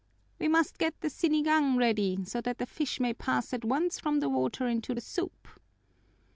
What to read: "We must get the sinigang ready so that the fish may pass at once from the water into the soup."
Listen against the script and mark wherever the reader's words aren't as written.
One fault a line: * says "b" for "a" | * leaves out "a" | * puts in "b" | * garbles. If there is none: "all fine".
all fine